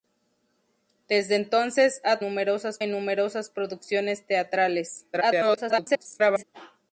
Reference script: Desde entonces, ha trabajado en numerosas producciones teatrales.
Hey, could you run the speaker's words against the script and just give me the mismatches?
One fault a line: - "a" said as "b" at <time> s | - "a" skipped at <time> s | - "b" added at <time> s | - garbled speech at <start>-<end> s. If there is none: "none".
- "trabajado" said as "numerosas" at 2.2 s
- garbled speech at 5.1-6.4 s